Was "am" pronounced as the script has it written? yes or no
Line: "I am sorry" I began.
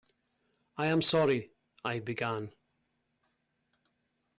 yes